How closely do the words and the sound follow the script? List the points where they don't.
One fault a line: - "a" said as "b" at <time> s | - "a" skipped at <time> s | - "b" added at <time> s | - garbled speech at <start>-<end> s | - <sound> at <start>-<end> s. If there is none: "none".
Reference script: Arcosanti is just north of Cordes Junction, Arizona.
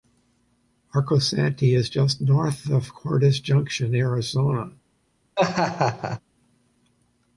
- laugh at 5.4-6.2 s